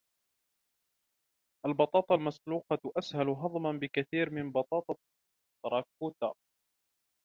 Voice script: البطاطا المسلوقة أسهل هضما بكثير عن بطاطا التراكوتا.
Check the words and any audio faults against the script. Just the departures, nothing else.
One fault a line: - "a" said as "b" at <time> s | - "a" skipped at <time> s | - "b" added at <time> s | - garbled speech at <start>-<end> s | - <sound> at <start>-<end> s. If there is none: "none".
- "عن" said as "من" at 4.3 s